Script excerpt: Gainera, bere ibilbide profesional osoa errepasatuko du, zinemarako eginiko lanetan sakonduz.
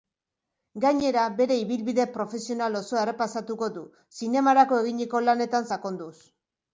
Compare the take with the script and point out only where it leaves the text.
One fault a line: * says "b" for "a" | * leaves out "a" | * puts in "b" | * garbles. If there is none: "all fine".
all fine